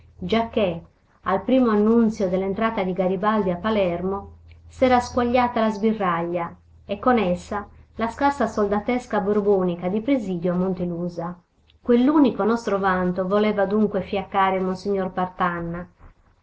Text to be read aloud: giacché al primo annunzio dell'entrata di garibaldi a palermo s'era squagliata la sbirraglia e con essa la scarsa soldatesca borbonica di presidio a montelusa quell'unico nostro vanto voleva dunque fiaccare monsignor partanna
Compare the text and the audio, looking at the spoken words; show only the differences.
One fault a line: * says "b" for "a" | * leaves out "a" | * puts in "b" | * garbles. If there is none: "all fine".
all fine